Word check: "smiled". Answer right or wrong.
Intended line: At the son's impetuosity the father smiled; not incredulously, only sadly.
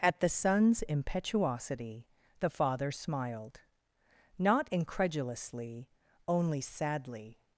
right